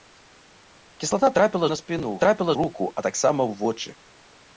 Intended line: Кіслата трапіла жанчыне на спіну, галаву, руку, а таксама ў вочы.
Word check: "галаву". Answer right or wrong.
wrong